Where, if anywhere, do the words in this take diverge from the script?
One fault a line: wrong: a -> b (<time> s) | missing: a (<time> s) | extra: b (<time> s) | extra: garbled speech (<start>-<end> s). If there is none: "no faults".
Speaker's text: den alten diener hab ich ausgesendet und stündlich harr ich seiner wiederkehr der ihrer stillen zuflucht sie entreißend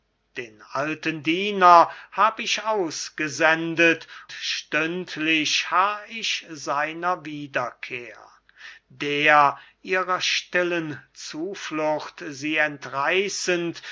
missing: und (4.1 s)